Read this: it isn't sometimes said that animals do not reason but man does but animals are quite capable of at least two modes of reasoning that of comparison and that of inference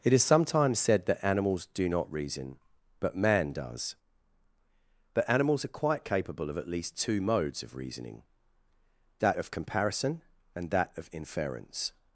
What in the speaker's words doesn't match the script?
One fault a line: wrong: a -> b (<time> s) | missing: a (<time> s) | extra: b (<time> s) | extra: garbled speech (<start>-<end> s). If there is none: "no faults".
wrong: isn't -> is (0.1 s)